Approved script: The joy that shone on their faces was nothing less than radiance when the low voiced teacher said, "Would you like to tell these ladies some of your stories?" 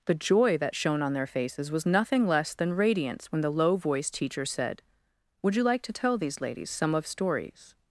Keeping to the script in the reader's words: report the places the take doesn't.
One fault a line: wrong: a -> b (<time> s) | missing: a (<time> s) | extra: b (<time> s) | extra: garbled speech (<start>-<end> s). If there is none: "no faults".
missing: your (7.0 s)